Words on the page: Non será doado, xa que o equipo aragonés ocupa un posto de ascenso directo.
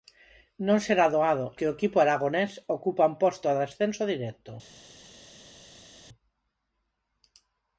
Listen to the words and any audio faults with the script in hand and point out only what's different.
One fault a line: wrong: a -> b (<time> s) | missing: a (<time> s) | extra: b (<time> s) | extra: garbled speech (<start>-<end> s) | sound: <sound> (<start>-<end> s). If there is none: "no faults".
missing: xa (1.5 s)